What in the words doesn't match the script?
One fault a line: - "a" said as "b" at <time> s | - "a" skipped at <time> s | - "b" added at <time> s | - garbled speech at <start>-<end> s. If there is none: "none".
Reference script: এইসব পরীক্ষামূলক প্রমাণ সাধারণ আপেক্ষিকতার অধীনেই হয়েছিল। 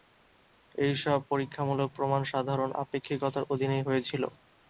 none